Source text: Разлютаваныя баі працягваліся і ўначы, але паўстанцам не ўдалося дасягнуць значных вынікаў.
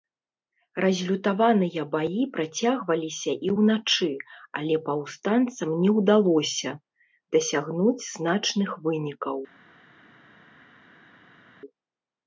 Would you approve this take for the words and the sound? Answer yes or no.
yes